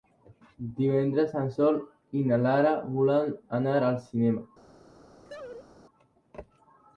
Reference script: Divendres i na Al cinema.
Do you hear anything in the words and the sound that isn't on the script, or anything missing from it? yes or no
yes